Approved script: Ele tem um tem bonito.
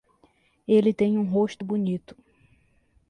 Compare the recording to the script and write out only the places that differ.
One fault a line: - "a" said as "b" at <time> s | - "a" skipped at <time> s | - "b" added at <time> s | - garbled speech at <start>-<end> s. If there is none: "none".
- "tem" said as "rosto" at 1.2 s